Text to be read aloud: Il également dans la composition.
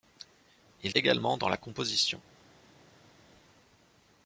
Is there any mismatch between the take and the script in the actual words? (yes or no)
no